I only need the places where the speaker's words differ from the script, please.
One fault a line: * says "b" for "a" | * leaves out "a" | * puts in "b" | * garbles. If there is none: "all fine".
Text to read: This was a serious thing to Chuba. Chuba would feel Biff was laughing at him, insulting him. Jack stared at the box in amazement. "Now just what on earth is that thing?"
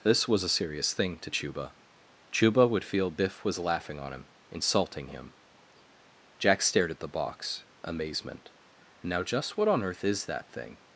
* says "on" for "at"
* leaves out "in"